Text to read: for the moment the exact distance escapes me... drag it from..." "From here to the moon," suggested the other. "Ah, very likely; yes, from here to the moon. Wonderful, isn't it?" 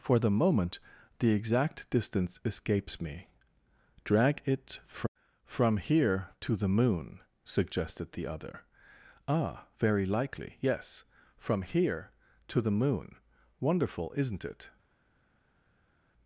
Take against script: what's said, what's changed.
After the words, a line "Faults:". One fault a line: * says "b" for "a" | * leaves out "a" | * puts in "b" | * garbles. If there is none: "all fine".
for the moment the exact distance escapes me... drag it fr..." "From here to the moon," suggested the other. "Ah, very likely; yes, from here to the moon. Wonderful, isn't it?"
Faults:
* says "fr" for "from"